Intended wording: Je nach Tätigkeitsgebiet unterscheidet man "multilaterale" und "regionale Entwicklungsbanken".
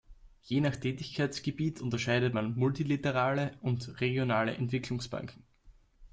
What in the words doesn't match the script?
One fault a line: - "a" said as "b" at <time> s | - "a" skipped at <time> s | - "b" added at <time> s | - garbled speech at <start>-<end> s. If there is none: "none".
none